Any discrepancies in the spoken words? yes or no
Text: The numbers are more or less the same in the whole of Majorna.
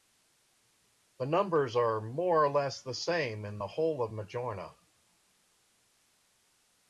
no